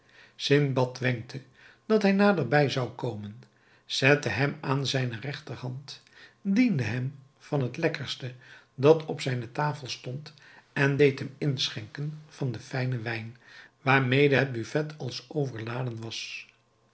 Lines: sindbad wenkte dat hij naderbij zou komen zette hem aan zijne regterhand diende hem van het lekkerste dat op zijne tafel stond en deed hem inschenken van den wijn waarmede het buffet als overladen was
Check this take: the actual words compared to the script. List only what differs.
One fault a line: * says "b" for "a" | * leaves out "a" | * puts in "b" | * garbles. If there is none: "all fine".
* puts in "fijnen"